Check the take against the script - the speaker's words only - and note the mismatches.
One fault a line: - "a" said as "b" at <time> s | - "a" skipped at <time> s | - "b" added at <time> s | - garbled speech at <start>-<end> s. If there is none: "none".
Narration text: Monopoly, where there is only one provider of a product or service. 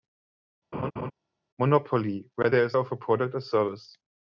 - "only one provider" skipped at 2.8 s